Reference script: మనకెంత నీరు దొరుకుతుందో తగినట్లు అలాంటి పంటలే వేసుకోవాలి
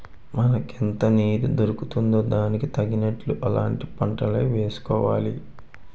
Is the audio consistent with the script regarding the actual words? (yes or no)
no